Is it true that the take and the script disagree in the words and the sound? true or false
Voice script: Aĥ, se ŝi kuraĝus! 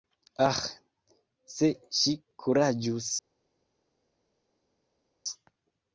false